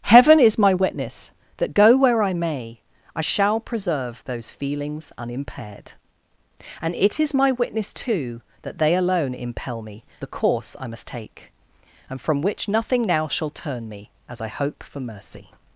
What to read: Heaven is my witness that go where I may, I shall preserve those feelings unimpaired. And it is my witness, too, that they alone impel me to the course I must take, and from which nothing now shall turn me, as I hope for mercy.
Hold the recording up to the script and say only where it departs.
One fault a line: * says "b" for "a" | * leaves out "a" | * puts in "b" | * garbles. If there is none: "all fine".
* leaves out "to"